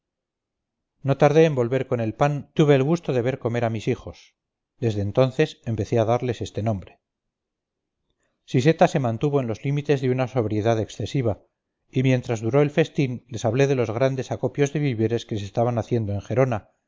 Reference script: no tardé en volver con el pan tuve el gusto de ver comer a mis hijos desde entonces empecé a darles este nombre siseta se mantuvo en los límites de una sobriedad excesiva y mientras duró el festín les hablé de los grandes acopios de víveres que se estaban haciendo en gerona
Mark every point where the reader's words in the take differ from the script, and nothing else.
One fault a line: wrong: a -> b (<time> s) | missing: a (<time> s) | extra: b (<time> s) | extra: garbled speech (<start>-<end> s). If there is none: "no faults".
no faults